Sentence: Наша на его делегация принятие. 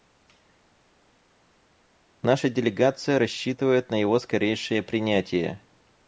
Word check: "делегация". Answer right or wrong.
wrong